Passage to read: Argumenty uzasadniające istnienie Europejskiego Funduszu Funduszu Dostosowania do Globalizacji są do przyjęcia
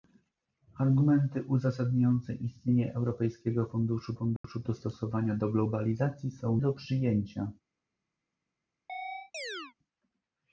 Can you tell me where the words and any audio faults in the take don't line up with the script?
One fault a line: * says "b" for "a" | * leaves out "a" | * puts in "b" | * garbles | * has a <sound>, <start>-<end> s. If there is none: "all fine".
* has a dropout, 4.4-4.4 s
* has a chirp, 8.9-9.7 s